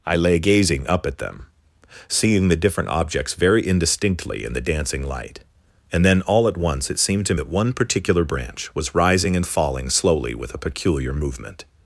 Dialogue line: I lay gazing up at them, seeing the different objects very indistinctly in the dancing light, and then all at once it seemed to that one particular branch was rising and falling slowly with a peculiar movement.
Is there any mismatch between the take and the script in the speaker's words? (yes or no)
no